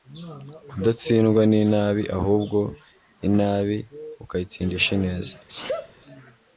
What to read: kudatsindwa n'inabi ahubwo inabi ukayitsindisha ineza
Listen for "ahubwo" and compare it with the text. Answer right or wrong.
right